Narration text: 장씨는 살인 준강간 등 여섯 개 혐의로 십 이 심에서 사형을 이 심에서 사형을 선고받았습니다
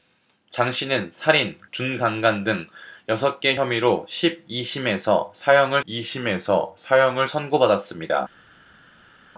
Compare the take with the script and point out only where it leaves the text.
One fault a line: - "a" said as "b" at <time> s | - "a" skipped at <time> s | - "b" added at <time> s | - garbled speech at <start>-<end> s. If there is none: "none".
none